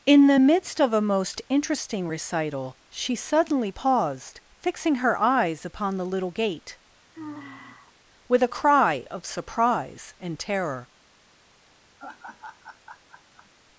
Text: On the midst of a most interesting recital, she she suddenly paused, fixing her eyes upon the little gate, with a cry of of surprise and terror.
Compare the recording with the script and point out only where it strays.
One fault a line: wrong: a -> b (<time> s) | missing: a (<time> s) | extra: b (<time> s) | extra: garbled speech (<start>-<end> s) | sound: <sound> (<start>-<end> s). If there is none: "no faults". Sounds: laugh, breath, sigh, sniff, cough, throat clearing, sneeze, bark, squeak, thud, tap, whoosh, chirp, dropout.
wrong: On -> In (0.1 s)
missing: she (3.1 s)
sound: sigh (7.1-7.9 s)
missing: of (9.2 s)
sound: laugh (12.0-13.5 s)